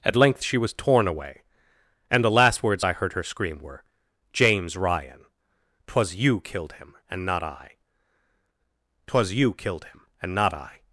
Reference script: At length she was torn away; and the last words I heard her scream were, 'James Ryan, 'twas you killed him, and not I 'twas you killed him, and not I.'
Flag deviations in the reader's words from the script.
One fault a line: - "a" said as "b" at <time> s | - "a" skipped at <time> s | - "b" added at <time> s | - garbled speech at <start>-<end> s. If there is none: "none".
none